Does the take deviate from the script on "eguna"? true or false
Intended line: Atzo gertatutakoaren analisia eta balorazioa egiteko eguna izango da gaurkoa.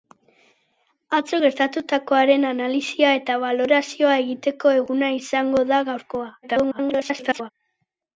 false